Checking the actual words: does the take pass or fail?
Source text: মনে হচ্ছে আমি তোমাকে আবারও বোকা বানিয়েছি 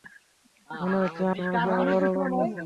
fail